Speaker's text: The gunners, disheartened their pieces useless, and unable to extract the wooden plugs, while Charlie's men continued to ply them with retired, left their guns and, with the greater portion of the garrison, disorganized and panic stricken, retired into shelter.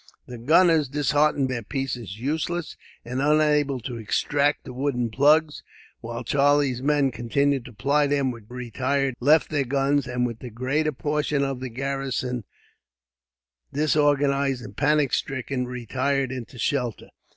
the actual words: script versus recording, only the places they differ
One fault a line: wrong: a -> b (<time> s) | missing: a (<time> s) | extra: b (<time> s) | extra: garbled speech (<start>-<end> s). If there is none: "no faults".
no faults